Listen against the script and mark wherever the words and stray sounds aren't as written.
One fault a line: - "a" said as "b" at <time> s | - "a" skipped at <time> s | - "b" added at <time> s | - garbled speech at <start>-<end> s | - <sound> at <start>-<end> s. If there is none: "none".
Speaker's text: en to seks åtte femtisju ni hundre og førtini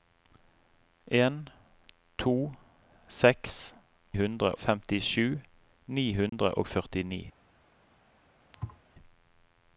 - "åtte" said as "hundre" at 4.2 s
- dropout at 6.3-6.3 s
- thud at 8.5-8.8 s